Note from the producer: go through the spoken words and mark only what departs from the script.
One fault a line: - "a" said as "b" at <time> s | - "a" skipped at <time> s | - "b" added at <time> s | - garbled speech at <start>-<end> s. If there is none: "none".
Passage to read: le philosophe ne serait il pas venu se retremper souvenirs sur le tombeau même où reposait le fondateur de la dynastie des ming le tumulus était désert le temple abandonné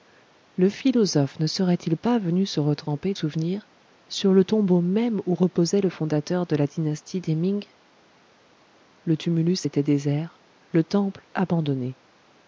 none